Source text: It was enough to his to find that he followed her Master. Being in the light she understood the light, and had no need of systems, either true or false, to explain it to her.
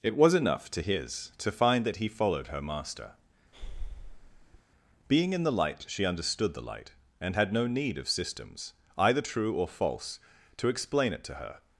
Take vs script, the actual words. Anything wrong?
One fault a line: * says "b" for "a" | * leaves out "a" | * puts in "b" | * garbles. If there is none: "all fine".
all fine